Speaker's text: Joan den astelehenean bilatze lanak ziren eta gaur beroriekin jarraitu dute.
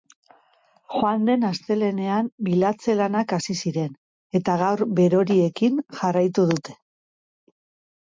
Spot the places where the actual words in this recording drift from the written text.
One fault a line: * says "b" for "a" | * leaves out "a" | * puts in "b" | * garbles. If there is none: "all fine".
* puts in "hasi"